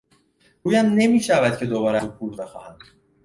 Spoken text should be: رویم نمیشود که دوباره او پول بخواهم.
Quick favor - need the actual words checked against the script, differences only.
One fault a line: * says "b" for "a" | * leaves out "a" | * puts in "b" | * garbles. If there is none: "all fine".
all fine